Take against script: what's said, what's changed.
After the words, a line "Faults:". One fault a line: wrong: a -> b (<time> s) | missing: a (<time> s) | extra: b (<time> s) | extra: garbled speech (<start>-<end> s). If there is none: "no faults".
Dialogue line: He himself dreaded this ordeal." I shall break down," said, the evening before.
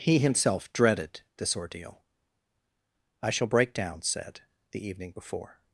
He himself dreaded this ordeal." I shall break down," said, the evening before.
Faults:
no faults